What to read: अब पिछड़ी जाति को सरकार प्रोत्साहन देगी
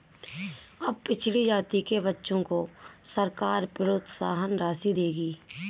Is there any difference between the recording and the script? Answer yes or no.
yes